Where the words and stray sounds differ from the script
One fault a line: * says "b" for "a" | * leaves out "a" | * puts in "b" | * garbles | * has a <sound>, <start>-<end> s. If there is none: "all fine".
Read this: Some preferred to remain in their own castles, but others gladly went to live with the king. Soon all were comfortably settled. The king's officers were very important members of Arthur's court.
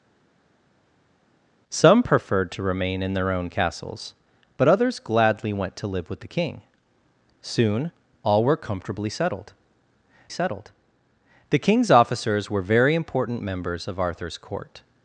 * puts in "settled"